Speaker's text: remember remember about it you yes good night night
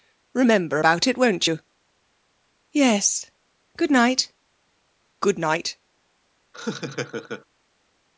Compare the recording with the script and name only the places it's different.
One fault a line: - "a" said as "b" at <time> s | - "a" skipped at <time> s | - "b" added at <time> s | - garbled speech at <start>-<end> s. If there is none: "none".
- "remember" skipped at 0.8 s
- "won't" added at 1.2 s
- "good" added at 5.2 s